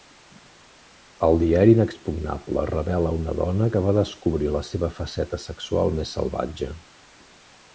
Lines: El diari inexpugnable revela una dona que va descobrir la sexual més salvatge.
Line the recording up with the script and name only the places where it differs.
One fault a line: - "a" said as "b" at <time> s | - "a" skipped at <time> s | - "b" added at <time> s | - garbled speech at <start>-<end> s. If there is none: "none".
- "seva faceta" added at 4.7 s